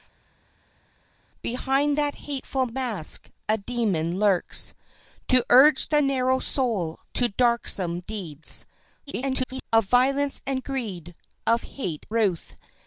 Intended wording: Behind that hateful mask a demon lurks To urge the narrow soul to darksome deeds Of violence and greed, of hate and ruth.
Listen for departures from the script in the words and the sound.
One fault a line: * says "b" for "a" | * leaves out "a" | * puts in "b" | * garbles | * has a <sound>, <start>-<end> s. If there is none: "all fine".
* garbles
* leaves out "and"